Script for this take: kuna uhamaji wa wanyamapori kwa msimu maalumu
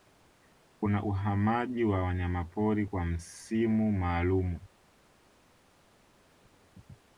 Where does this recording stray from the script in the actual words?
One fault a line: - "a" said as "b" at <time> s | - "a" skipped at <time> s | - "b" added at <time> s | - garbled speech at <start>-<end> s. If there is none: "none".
none